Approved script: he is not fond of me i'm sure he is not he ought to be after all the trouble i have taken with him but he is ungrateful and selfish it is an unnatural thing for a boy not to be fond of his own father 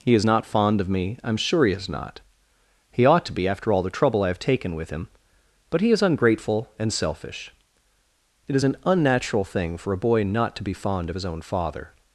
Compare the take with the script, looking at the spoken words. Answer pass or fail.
pass